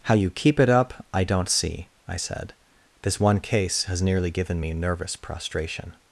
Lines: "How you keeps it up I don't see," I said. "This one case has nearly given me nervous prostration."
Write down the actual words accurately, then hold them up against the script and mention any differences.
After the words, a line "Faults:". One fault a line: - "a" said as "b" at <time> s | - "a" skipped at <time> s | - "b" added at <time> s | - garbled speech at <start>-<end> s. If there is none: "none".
"How you keep it up I don't see," I said. "This one case has nearly given me nervous prostration."
Faults:
- "keeps" said as "keep" at 0.3 s